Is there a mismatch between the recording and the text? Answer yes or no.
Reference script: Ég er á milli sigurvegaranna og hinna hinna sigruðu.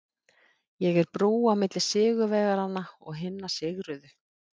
yes